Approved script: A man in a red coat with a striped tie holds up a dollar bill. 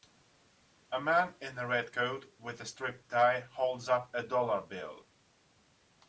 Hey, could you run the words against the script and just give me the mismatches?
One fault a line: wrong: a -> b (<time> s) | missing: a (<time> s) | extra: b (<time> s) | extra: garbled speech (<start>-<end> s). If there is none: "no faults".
no faults